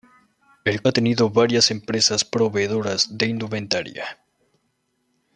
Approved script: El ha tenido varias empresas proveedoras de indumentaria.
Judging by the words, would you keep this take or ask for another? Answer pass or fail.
pass